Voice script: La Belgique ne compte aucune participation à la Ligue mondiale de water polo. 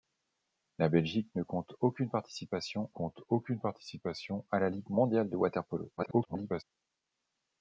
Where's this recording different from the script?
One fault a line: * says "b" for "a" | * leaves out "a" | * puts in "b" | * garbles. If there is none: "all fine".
* puts in "compte aucune participation"
* garbles